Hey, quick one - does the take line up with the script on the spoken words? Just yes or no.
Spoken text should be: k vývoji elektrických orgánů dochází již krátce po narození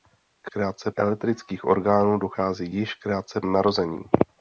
no